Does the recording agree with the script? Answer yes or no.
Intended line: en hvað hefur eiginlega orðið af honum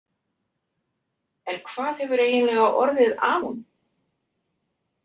yes